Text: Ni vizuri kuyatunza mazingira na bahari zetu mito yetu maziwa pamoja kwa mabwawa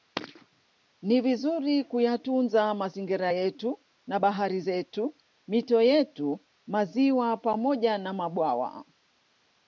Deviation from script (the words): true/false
true